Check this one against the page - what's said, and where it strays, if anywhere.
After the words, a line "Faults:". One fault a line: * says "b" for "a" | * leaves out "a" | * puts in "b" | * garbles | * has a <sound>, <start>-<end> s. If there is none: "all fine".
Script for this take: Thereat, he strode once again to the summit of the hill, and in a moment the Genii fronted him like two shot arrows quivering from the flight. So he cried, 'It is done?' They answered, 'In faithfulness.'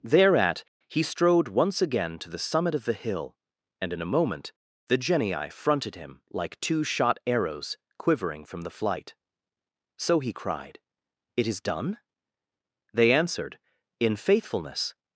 Thereat, he strode once again to the summit of the hill, and in a moment the Genii fronted him like two shot arrows quivering from the flight. So he cried, 'It is done?' They answered, 'In faithfulness.'
Faults:
all fine